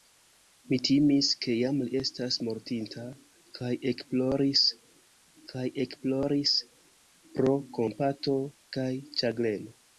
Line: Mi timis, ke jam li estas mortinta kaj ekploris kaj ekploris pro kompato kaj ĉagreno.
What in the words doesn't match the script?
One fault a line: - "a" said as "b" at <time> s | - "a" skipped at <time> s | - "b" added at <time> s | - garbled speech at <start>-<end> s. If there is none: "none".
none